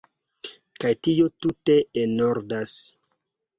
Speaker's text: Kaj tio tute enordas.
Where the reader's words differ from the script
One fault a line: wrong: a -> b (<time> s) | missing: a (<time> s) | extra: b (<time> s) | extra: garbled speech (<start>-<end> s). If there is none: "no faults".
no faults